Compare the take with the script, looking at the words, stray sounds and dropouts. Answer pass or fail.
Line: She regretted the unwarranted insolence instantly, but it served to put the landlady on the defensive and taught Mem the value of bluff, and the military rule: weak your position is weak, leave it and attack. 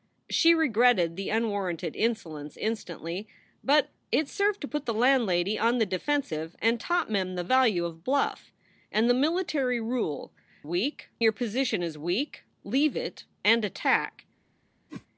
fail